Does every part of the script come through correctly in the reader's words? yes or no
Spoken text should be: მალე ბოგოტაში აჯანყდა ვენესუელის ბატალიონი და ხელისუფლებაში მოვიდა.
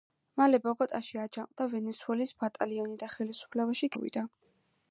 yes